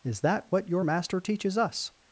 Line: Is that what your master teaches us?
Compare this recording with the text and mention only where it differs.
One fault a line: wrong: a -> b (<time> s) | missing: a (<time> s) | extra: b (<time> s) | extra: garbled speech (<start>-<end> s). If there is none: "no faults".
no faults